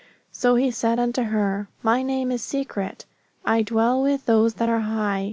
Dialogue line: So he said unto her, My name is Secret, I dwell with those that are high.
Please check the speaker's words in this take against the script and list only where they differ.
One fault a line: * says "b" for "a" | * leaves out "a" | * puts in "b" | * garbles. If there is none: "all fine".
all fine